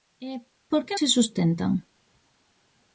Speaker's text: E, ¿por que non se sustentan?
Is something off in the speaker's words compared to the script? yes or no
yes